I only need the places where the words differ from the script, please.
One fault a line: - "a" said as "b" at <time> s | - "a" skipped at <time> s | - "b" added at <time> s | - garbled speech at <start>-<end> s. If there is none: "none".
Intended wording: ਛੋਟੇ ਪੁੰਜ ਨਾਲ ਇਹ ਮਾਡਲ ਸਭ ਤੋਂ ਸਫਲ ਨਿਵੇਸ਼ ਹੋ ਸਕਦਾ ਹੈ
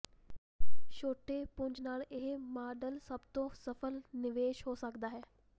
none